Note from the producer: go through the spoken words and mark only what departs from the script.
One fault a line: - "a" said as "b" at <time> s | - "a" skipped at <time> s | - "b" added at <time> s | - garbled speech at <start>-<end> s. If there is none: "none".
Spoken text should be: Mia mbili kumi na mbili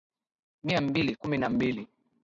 none